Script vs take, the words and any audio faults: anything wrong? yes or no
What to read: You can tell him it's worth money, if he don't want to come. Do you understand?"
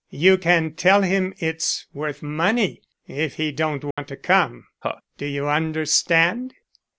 yes